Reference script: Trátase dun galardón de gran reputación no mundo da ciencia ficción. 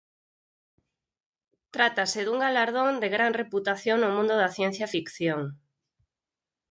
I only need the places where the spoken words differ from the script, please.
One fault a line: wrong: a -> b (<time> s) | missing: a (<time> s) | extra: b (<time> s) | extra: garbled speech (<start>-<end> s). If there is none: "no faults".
no faults